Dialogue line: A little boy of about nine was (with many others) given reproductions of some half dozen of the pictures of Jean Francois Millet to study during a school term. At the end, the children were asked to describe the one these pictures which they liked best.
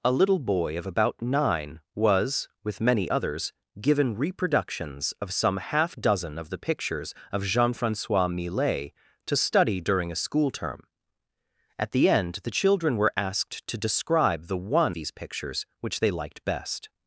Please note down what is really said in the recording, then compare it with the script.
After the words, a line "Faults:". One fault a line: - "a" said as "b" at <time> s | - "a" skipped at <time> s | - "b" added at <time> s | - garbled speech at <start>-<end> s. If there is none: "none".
A little boy of about nine was (with many others) given reproductions of some half dozen of the pictures of Jean Francois Millet to study during a school term. At the end, the children were asked to describe the one these pictures which they liked best.
Faults:
none